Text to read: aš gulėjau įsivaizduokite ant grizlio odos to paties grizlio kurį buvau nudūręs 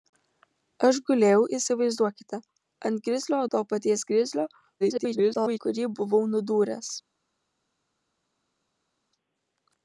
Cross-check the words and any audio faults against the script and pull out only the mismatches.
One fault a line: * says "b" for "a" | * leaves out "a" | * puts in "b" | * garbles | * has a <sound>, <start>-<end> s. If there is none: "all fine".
* leaves out "odos"
* garbles